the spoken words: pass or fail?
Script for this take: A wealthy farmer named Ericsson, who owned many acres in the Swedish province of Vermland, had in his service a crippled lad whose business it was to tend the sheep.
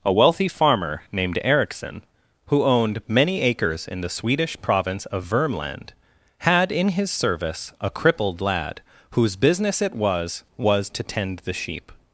fail